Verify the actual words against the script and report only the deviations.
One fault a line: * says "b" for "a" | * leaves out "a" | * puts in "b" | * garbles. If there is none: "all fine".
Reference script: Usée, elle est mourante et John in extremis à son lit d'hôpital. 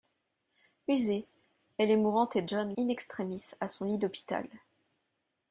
all fine